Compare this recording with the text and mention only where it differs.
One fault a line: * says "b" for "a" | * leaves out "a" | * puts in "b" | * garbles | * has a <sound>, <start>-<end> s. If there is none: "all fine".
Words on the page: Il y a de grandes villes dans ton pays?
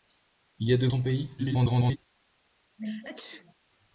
* leaves out "grandes villes dans"
* garbles
* has a sneeze, 2.8-3.5 s